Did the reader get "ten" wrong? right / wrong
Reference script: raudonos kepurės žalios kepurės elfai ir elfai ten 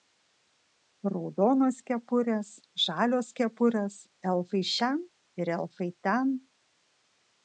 right